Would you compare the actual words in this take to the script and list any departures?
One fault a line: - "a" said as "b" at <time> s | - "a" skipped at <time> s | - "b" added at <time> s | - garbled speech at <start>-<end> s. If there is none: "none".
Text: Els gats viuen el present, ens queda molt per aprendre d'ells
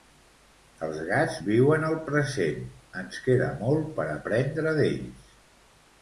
none